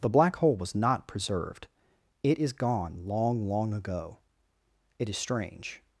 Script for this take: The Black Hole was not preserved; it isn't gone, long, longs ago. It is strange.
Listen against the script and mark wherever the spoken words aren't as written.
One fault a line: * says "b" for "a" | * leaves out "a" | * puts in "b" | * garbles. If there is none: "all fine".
* says "is" for "isn't"
* says "long" for "longs"